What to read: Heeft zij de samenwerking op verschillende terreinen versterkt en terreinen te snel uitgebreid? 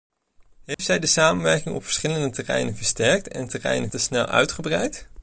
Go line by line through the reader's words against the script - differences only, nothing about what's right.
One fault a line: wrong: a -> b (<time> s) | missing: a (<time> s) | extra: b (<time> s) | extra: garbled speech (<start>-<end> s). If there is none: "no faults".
no faults